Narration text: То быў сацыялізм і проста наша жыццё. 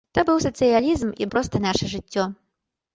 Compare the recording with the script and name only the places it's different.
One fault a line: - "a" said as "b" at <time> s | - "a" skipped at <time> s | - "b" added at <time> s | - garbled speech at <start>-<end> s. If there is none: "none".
none